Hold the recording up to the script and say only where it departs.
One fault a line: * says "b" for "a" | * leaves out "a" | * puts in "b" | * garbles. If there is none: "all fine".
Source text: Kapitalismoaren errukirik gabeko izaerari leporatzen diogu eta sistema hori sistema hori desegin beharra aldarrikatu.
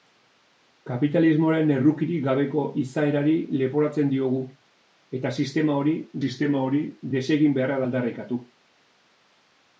all fine